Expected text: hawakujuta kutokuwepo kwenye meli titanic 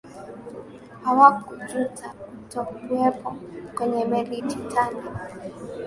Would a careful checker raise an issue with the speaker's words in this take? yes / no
no